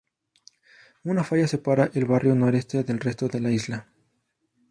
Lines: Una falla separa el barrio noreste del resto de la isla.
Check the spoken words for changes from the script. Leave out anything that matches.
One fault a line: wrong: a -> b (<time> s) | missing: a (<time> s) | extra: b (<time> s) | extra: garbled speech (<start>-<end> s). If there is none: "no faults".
no faults